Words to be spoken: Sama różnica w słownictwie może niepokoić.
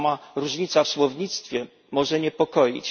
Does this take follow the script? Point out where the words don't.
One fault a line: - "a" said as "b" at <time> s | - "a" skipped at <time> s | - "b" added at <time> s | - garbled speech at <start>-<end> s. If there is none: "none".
none